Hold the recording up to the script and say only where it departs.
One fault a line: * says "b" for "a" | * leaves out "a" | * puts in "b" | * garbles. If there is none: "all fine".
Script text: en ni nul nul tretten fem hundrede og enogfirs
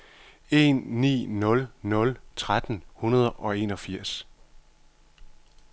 * leaves out "fem"